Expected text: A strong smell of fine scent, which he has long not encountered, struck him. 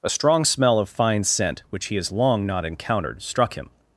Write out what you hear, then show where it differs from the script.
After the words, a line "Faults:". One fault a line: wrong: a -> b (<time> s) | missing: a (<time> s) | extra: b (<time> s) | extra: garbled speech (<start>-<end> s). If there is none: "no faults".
A strong smell of fine scent, which he has long not encountered, struck him.
Faults:
no faults